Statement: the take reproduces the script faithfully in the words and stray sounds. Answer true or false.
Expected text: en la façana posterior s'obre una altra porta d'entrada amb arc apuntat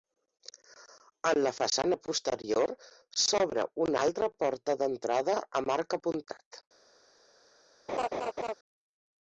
false